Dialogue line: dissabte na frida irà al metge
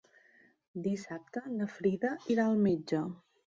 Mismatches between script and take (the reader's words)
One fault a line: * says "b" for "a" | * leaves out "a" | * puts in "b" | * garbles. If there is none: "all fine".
all fine